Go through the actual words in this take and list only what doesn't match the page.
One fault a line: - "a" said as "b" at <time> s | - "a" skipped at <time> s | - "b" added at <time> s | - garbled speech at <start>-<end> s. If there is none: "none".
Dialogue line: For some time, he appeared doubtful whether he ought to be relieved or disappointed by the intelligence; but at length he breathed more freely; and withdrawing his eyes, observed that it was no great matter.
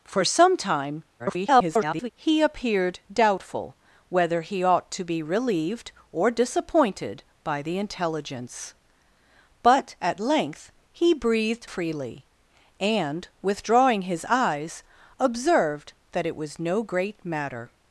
- garbled speech at 1.2-2.1 s
- "more" skipped at 11.7 s